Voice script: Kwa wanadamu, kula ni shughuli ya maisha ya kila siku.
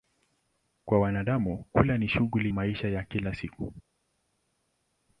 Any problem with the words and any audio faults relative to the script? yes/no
yes